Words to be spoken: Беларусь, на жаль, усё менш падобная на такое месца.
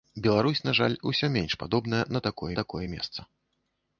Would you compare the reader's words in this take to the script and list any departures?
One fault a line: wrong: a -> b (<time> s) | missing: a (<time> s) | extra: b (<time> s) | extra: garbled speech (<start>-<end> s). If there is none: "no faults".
extra: такое (2.5 s)